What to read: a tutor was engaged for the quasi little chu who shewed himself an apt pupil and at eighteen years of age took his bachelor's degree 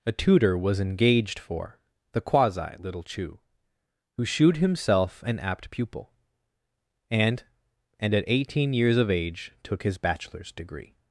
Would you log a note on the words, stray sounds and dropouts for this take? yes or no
yes